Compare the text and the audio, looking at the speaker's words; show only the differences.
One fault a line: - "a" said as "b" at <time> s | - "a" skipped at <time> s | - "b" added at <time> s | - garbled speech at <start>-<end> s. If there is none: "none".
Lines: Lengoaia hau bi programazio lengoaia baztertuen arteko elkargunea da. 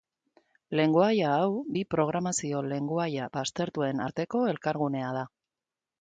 none